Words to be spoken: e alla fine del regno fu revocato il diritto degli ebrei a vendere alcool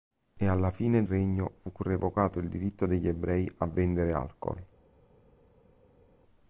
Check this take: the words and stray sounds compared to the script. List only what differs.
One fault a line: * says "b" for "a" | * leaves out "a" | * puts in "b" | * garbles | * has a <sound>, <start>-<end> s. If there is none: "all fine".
* leaves out "del"